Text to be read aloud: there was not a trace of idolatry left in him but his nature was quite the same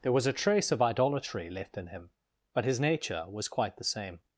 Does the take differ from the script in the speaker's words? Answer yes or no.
yes